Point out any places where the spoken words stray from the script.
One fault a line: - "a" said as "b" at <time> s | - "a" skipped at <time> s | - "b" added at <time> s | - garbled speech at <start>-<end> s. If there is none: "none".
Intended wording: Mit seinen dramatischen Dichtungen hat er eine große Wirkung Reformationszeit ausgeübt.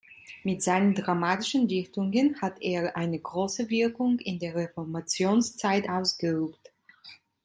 - "in der" added at 4.2 s